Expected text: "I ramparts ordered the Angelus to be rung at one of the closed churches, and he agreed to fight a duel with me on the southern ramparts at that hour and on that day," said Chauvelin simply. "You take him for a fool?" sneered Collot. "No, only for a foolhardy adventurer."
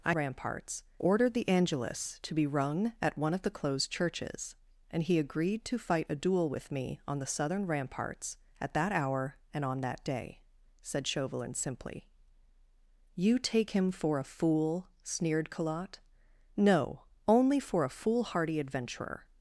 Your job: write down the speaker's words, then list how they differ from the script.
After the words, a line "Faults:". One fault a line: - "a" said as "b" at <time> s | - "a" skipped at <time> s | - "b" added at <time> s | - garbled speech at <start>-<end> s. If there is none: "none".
"I ramparts ordered the Angelus to be rung at one of the closed churches, and he agreed to fight a duel with me on the southern ramparts at that hour and on that day," said Chauvelin simply. "You take him for a fool?" sneered Collot. "No, only for a foolhardy adventurer."
Faults:
none